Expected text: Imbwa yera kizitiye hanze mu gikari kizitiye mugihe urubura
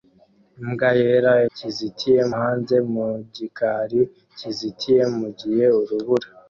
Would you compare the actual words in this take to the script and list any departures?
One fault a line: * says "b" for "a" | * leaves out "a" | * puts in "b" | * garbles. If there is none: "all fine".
all fine